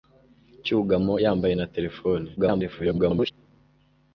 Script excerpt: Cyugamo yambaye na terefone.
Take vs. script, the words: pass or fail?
fail